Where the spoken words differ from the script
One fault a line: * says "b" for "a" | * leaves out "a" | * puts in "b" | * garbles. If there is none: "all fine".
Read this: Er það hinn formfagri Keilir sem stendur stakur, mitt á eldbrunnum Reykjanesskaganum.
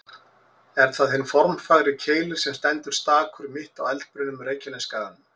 all fine